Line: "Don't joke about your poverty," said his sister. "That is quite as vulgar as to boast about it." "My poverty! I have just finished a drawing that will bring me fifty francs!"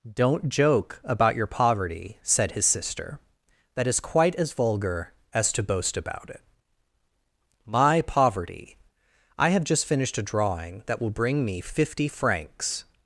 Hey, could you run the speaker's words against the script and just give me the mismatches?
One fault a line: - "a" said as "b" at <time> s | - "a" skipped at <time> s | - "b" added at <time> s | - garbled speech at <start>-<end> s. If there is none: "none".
none